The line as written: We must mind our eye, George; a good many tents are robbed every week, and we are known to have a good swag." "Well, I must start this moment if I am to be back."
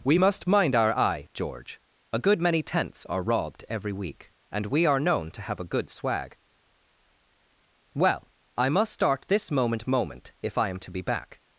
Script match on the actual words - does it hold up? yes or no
no